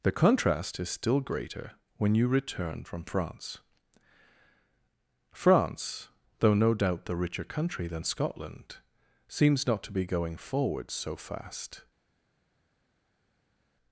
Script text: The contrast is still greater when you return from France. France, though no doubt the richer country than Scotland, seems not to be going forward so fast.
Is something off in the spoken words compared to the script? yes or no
no